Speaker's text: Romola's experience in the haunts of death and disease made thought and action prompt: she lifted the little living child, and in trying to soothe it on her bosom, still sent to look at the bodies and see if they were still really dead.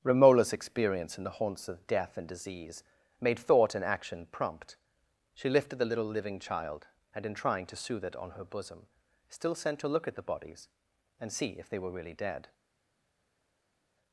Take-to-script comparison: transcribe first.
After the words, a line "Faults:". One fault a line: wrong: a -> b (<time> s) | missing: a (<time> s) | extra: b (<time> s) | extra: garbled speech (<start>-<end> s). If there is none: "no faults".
Romola's experience in the haunts of death and disease made thought and action prompt: she lifted the little living child, and in trying to soothe it on her bosom, still sent to look at the bodies and see if they were really dead.
Faults:
missing: still (11.9 s)